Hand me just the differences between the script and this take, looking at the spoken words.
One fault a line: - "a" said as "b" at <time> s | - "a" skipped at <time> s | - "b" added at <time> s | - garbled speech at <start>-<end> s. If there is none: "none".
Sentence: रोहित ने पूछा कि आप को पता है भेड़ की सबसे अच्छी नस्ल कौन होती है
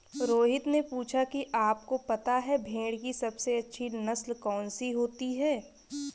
- "सी" added at 4.7 s